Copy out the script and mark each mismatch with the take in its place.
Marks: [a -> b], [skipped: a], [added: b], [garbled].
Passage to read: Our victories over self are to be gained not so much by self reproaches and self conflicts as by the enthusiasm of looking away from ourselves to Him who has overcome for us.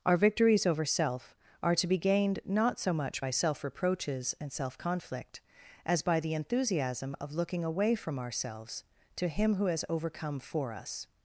Our victories over self are to be gained not so much by self reproaches and self [conflicts -> conflict] as by the enthusiasm of looking away from ourselves to Him who has overcome for us.